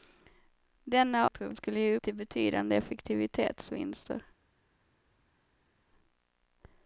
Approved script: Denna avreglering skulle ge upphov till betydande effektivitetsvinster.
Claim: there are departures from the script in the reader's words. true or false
true